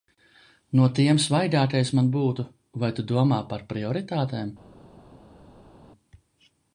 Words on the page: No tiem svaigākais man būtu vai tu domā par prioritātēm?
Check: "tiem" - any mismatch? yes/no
no